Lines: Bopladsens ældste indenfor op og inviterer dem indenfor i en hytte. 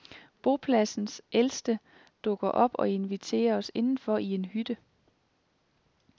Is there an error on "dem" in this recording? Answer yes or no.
yes